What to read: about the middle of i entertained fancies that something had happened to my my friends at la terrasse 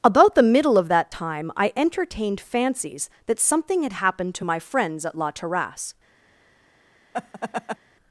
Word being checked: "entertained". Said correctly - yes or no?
yes